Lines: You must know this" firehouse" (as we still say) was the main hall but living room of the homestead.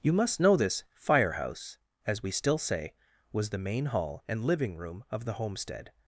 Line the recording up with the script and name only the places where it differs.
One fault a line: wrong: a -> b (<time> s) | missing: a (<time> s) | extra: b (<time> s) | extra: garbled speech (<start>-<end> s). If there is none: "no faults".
wrong: but -> and (4.3 s)